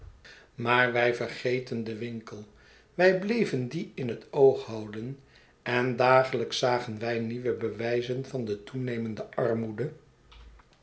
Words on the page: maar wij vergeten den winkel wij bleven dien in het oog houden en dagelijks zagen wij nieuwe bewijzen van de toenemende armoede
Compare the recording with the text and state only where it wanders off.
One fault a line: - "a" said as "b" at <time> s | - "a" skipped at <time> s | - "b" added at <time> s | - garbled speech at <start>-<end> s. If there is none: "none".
none